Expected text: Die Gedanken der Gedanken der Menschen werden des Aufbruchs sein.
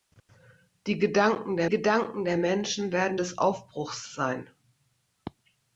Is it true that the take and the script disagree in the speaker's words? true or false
false